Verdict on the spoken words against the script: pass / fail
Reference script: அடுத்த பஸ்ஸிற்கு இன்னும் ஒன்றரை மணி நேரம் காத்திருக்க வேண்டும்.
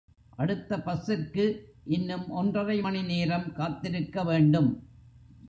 pass